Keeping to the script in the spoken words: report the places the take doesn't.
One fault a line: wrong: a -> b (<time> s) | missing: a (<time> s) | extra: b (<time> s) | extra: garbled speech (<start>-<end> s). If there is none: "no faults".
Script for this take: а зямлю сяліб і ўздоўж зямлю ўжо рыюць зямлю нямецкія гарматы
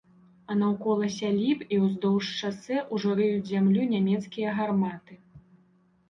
wrong: зямлю -> наўкола (0.6 s)
wrong: зямлю -> шасэ (2.4 s)